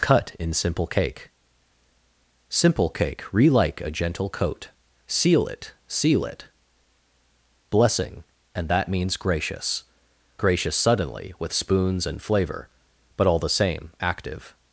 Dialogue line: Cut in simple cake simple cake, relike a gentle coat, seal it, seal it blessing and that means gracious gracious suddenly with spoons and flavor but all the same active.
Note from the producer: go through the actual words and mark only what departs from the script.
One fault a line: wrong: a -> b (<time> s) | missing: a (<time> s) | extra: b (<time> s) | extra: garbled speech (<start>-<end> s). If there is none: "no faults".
no faults